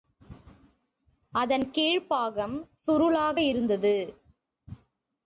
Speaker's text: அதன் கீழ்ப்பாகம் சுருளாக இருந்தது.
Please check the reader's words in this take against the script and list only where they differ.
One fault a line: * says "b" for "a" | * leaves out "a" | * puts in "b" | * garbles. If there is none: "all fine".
all fine